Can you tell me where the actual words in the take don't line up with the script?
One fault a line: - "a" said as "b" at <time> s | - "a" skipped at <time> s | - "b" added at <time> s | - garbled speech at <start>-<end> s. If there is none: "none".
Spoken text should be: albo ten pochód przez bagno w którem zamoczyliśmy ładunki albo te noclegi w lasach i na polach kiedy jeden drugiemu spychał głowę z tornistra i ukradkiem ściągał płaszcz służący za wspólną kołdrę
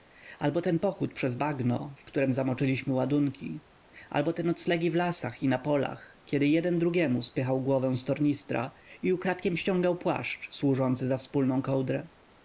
none